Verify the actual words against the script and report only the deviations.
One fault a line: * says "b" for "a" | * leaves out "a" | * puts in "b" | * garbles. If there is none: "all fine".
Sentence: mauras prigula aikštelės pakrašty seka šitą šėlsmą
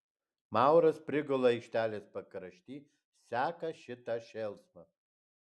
all fine